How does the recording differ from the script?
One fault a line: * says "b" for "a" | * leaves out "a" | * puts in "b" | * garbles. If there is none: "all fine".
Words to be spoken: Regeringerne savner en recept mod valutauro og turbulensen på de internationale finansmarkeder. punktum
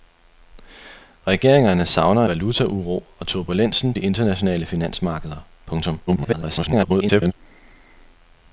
* leaves out "en recept mod"
* leaves out "på"
* garbles